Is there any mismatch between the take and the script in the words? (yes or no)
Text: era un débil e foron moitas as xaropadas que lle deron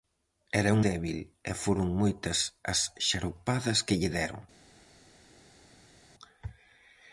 no